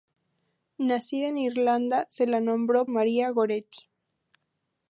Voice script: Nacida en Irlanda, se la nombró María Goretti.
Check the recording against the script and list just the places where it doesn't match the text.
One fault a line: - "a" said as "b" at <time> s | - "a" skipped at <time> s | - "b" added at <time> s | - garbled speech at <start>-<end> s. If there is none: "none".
none